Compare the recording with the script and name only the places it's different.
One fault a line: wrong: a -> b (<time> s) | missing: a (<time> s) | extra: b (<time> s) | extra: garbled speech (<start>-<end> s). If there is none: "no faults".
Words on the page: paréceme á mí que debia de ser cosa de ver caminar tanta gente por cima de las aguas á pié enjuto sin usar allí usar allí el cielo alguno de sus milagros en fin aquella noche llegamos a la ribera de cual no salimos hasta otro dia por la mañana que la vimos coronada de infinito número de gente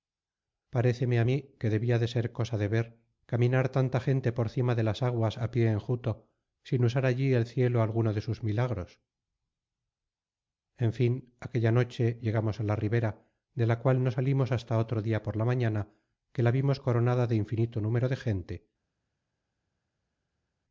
missing: usar allí (7.3 s)
extra: la (13.7 s)